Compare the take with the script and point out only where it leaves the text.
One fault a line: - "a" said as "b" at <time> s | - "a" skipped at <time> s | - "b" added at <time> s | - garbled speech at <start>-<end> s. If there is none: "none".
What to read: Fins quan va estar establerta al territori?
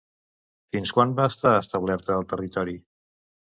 none